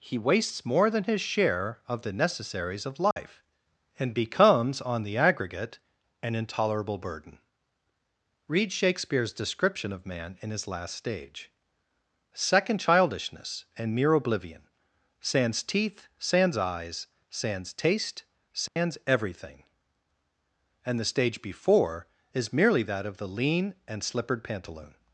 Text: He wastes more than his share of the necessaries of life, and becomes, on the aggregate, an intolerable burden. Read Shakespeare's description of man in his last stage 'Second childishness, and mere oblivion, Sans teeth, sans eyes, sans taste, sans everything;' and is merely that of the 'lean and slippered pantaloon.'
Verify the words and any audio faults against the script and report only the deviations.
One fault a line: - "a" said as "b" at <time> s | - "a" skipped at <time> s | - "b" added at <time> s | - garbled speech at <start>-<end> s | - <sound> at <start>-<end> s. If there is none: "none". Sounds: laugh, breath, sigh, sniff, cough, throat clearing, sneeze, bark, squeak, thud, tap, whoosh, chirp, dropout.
- dropout at 3.1-3.2 s
- dropout at 18.7-18.8 s
- "the stage before" added at 21.0 s